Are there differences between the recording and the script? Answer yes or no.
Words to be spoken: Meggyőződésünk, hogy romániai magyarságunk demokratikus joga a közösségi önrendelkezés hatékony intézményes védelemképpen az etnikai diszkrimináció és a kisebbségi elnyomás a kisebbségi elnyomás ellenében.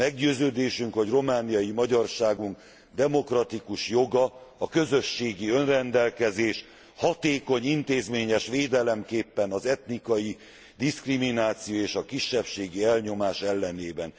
yes